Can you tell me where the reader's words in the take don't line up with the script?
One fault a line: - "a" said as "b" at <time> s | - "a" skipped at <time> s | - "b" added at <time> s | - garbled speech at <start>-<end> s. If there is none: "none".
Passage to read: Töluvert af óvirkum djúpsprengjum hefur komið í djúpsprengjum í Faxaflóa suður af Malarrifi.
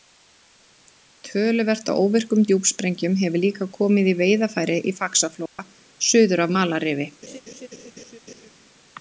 - "líka" added at 3.5 s
- "djúpsprengjum" said as "veiðarfæri" at 4.2 s